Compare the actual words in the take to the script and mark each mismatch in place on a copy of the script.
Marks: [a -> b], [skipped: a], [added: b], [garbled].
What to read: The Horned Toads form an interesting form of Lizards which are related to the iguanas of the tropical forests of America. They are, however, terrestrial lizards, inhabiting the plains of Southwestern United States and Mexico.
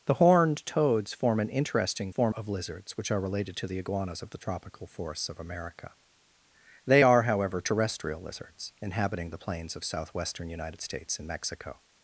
The Horned Toads form an interesting form of Lizards which are related to the iguanas of the tropical forests of America. They are, however, terrestrial lizards, inhabiting the plains of Southwestern United States and Mexico.